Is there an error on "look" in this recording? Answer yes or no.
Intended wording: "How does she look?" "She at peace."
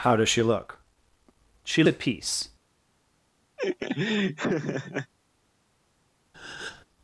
no